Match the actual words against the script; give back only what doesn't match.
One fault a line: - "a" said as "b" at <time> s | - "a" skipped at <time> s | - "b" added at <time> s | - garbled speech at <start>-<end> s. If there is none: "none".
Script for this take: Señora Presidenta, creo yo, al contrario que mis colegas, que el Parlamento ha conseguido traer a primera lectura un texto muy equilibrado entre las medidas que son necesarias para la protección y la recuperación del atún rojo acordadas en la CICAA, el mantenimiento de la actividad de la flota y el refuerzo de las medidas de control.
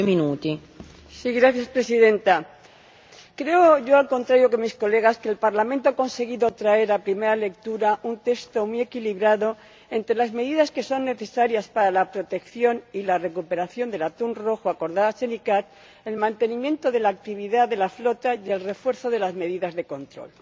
none